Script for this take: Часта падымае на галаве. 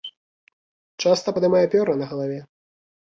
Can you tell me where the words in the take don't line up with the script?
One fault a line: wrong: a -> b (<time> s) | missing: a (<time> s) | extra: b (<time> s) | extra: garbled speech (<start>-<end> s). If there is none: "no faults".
extra: пёры (1.7 s)